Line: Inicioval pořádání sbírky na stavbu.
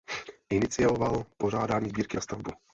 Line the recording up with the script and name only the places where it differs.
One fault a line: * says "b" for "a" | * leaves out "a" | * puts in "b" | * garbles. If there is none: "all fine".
all fine